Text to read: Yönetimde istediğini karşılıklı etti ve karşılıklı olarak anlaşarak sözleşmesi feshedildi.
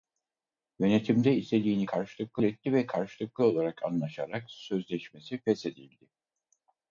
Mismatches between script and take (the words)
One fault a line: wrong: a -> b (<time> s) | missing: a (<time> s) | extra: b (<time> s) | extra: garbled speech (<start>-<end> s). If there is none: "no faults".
no faults